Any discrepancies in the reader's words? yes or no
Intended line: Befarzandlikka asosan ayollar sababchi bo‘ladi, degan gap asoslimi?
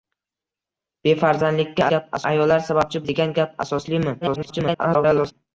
yes